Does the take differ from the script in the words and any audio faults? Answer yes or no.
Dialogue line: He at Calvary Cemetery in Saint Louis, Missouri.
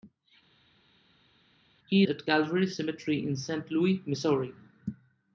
no